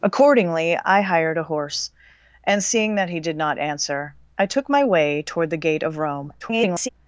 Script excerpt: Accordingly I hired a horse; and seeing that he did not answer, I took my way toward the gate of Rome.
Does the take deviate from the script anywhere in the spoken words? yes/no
yes